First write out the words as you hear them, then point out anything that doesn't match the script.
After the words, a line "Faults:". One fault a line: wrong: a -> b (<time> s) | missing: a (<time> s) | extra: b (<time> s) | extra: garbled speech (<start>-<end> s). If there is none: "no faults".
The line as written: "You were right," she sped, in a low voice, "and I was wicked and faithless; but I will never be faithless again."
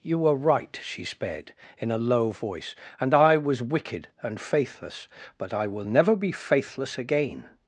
"You were right," she sped, in a low voice, "and I was wicked and faithless; but I will never be faithless again."
Faults:
no faults